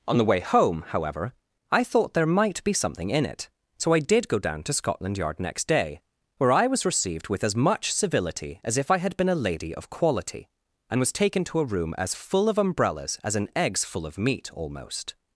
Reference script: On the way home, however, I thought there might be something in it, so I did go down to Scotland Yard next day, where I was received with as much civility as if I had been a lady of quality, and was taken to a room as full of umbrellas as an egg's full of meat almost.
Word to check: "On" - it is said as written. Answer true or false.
true